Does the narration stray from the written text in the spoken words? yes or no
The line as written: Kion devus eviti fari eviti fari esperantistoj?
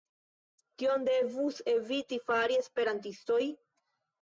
yes